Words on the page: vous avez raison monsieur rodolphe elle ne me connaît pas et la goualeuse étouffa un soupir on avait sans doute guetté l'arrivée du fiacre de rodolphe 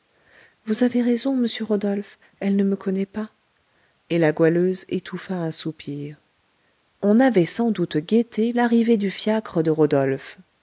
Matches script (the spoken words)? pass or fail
pass